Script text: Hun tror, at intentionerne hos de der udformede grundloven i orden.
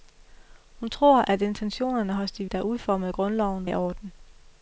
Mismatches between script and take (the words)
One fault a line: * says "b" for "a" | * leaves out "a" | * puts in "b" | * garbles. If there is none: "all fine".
all fine